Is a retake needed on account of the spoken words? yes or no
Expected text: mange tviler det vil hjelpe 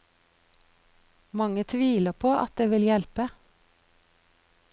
yes